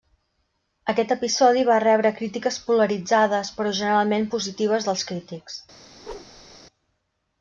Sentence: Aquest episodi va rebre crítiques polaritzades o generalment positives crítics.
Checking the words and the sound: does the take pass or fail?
fail